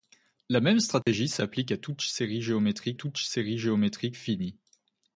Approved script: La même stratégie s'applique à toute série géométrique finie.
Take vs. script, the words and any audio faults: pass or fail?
fail